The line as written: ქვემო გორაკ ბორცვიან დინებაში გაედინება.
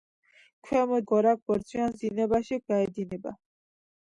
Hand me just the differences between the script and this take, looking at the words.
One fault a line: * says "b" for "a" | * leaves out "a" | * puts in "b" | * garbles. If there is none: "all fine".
all fine